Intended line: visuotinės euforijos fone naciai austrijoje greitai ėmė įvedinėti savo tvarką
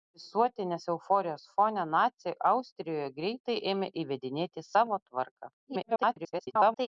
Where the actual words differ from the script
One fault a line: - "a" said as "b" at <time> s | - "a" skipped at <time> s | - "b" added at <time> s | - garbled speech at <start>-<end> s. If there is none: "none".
- garbled speech at 5.6-6.9 s